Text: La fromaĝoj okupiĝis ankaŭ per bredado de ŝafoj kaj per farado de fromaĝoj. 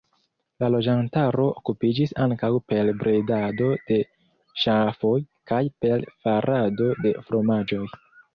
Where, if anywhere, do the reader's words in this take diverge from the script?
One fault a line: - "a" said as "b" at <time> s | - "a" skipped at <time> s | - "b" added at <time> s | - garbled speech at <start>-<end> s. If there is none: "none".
- "fromaĝoj" said as "loĝantaro" at 0.8 s